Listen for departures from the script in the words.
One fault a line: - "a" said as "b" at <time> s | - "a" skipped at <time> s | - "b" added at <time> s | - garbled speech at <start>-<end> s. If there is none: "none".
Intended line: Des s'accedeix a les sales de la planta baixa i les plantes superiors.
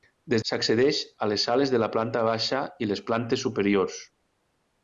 none